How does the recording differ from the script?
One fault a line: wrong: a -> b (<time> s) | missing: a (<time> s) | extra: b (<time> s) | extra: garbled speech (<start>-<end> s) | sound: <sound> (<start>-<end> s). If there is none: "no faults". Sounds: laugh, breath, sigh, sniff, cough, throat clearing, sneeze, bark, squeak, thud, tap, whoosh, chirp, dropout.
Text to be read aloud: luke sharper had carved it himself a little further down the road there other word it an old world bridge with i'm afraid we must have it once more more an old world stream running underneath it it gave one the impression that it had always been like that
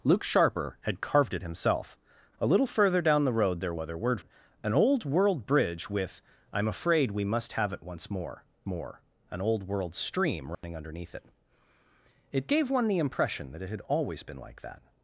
sound: dropout (10.5-10.6 s)